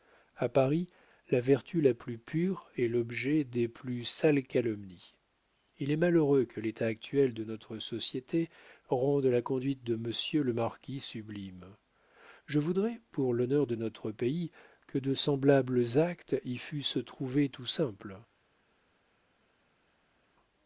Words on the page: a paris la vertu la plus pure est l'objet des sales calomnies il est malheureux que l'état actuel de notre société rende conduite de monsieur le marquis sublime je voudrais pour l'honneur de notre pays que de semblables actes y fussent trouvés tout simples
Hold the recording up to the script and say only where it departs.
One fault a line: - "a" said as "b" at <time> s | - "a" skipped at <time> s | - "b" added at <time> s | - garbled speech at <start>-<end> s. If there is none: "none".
- "plus" added at 3.7 s
- "la" added at 9.3 s